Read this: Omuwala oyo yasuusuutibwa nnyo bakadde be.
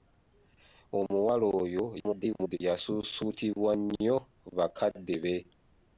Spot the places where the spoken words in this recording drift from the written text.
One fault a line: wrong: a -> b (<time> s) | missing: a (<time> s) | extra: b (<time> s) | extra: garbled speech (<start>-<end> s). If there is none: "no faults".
extra: garbled speech (2.0-2.6 s)